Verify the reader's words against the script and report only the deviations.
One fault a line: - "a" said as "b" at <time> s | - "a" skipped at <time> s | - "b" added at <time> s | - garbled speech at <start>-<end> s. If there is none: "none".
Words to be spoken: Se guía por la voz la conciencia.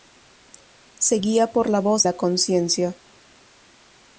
none